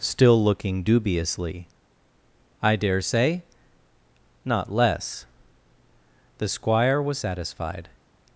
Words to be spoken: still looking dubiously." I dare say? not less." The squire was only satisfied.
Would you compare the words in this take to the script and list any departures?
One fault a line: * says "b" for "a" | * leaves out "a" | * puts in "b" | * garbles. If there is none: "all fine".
* leaves out "only"